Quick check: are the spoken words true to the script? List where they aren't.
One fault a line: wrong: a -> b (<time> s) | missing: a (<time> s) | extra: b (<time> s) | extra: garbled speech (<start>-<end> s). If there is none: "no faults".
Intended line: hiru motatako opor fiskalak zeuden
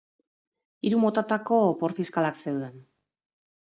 no faults